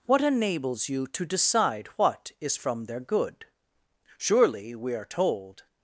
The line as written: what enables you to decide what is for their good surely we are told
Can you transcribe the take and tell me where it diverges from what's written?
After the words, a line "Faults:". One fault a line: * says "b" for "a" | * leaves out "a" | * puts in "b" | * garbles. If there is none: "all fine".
what enables you to decide what is from their good surely we are told
Faults:
* says "from" for "for"